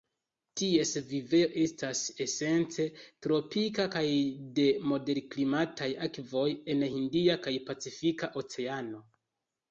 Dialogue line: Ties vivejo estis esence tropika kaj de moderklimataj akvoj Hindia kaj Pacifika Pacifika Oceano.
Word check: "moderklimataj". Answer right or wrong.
right